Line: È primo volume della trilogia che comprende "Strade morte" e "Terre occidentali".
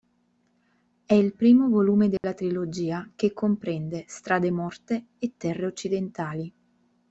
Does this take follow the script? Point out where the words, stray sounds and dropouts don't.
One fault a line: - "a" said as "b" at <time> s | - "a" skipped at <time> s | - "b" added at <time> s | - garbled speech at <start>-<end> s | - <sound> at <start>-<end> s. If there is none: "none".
- "il" added at 1.1 s
- dropout at 2.2-2.2 s